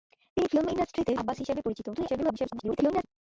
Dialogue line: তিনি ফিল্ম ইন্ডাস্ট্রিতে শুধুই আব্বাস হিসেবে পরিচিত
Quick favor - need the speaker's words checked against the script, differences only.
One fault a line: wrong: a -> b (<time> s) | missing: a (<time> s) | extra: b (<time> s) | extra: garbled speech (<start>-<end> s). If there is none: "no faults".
missing: শুধুই (1.1 s)
extra: garbled speech (1.9-3.0 s)